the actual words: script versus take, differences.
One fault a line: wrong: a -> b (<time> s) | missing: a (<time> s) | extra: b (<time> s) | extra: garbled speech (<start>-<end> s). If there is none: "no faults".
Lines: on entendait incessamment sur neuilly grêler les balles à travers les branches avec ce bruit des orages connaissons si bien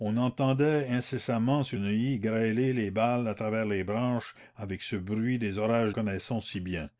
no faults